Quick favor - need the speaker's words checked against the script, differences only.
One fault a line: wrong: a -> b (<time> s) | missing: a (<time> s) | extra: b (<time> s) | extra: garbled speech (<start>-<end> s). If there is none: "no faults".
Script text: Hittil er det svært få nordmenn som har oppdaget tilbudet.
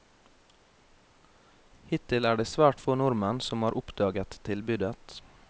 no faults